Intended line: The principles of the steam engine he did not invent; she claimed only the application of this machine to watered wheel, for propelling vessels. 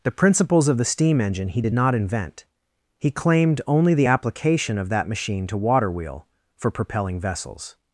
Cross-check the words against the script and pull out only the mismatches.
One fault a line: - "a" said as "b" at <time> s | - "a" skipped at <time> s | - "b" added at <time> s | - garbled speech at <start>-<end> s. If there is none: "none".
- "she" said as "he" at 3.0 s
- "this" said as "that" at 4.9 s
- "watered" said as "water" at 5.6 s